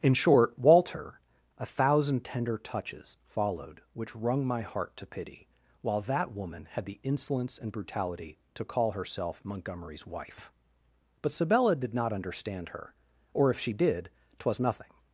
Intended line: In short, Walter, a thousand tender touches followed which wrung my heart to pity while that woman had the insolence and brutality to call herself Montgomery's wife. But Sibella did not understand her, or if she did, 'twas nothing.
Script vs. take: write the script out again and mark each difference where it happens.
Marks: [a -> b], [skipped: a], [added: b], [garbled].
In short, Walter, a thousand tender touches followed which wrung my heart to pity while that woman had the insolence and brutality to call herself Montgomery's wife. But Sibella did not understand her, or if she did, 'twas nothing.